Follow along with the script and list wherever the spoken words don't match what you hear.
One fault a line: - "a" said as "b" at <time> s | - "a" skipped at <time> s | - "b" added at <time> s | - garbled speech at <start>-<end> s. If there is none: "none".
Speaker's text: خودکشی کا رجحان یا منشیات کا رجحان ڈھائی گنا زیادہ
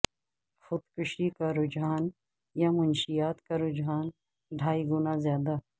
none